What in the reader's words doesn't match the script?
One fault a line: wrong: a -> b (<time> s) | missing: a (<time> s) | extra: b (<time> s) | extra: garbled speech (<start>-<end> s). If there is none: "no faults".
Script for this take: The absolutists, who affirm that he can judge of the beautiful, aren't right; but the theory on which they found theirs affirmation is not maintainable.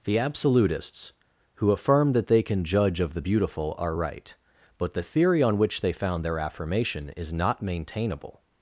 wrong: he -> they (2.3 s)
wrong: aren't -> are (3.8 s)
wrong: theirs -> their (6.2 s)